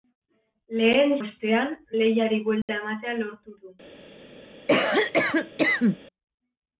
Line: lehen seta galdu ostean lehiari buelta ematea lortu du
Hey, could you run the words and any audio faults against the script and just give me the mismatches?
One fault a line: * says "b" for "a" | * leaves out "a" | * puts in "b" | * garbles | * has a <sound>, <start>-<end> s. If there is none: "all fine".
* leaves out "seta galdu"
* has a dropout, 2.6-2.7 s
* has a cough, 4.7-6.0 s